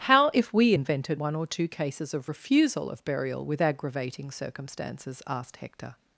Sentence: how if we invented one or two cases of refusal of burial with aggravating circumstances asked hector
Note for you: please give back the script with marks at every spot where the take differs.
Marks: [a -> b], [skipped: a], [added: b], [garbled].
how if we invented one or two cases of refusal of burial with aggravating circumstances asked hector